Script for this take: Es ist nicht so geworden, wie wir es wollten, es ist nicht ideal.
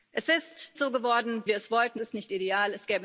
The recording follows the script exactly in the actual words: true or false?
false